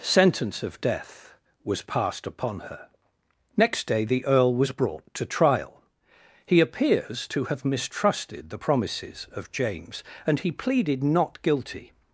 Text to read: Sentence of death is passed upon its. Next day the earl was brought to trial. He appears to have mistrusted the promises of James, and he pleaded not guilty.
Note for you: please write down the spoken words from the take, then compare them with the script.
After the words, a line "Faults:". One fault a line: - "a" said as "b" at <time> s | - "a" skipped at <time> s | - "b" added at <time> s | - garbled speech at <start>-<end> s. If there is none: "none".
Sentence of death was passed upon her. Next day the earl was brought to trial. He appears to have mistrusted the promises of James, and he pleaded not guilty.
Faults:
- "is" said as "was" at 1.6 s
- "its" said as "her" at 2.6 s